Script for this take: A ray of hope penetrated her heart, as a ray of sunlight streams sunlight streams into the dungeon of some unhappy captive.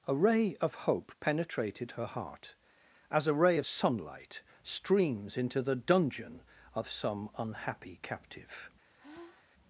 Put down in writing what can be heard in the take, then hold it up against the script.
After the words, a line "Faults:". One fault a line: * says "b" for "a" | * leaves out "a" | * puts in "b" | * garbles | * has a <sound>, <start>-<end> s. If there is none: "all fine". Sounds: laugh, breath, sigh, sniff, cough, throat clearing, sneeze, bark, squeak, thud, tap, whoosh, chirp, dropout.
A ray of hope penetrated her heart, as a ray of sunlight streams into the dungeon of some unhappy captive.
Faults:
* leaves out "sunlight streams"
* has a sigh, 9.0-9.5 s